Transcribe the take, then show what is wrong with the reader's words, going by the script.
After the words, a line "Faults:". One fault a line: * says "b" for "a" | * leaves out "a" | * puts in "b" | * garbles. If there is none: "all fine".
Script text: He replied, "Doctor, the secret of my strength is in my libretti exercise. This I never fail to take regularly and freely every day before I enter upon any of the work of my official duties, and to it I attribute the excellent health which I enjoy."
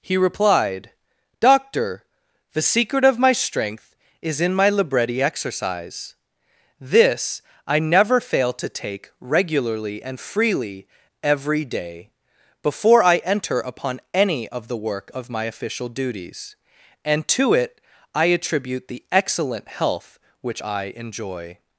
He replied, "Doctor, the secret of my strength is in my libretti exercise. This I never fail to take regularly and freely every day before I enter upon any of the work of my official duties, and to it I attribute the excellent health which I enjoy."
Faults:
all fine